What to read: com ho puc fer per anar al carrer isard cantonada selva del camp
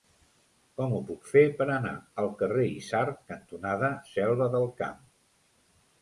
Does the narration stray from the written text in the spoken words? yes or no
no